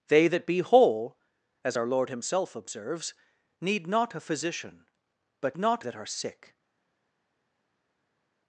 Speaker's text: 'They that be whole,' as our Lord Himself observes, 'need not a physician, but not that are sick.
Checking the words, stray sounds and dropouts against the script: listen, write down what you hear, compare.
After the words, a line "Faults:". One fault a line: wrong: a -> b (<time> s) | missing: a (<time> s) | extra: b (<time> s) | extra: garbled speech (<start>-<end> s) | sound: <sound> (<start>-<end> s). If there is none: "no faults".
'They that be whole,' as our Lord Himself observes, 'need not a physician, but not that are sick.
Faults:
no faults